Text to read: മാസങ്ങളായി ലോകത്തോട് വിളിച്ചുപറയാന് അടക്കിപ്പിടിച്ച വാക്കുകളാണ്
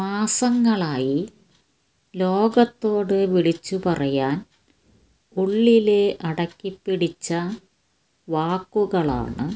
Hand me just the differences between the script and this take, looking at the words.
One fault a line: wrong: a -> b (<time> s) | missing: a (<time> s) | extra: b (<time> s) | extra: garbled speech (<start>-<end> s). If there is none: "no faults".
extra: ഉള്ളില് (5.4 s)